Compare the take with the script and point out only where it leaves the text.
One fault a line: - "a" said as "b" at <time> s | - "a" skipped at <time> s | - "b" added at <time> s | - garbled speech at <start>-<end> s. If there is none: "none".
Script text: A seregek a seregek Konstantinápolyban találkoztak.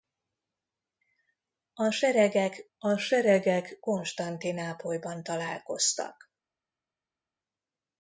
none